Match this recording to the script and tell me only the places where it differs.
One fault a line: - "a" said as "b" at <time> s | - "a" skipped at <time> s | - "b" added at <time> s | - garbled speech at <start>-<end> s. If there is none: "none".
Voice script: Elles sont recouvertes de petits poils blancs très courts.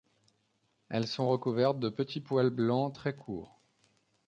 none